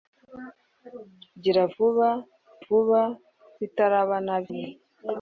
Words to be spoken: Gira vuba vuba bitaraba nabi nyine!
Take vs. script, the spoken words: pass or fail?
pass